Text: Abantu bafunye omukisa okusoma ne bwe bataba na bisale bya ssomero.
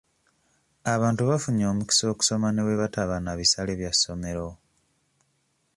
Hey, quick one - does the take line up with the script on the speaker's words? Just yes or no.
yes